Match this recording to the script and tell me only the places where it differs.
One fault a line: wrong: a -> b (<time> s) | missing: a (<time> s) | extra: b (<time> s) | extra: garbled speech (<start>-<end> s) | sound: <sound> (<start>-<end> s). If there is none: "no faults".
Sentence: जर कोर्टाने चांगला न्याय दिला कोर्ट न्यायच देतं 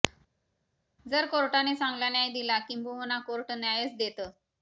extra: किंबहुना (2.6 s)